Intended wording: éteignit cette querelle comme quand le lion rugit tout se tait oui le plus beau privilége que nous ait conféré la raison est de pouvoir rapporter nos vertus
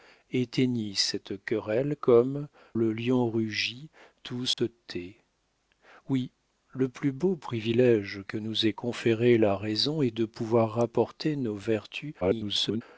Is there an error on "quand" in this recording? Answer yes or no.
yes